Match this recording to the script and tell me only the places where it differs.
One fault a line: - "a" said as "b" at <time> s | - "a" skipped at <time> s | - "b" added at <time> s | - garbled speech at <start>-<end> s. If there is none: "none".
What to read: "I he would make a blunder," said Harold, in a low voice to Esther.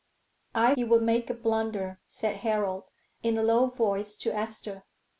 none